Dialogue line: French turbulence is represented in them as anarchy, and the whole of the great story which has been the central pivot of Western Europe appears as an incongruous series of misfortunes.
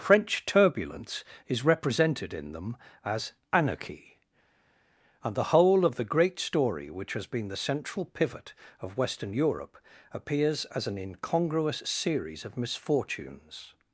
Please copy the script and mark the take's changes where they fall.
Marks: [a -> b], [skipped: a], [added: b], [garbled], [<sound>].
French turbulence is represented in them as anarchy, and the whole of the great story which has been the central pivot of Western Europe appears as an incongruous series of misfortunes.